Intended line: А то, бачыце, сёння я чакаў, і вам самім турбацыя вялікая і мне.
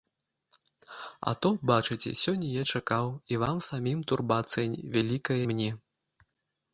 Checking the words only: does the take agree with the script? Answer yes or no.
no